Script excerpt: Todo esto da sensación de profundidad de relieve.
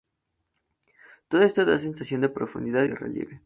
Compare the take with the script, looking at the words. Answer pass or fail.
pass